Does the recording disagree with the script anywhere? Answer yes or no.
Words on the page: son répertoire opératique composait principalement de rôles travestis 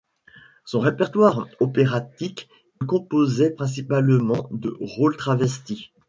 no